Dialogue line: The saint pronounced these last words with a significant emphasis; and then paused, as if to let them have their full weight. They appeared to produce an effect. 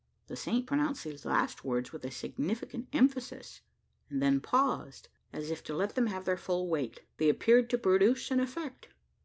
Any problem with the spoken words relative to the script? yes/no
no